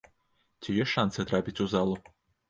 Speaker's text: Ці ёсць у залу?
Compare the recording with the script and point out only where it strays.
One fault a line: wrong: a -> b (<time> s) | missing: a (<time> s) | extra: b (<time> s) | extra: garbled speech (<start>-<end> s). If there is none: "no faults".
extra: шанцы трапіць (0.9 s)